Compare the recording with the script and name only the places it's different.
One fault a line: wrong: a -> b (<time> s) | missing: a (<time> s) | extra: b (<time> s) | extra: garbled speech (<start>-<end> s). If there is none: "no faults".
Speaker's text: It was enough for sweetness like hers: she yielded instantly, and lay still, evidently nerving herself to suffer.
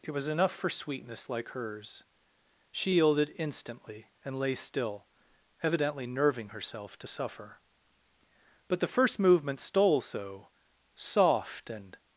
extra: But the first movement stole so soft and (8.7 s)